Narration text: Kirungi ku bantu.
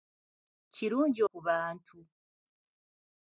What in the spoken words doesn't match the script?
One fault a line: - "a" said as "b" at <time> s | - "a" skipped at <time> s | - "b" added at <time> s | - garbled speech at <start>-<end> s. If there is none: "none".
none